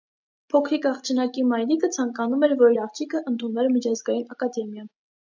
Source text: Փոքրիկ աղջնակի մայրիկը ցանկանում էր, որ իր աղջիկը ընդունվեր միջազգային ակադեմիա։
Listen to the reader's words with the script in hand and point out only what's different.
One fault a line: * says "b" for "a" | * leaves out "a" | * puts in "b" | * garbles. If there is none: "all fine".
all fine